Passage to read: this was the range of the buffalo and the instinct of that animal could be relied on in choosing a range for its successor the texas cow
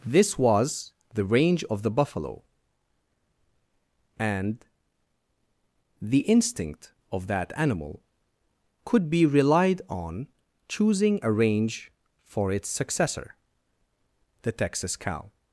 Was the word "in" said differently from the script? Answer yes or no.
yes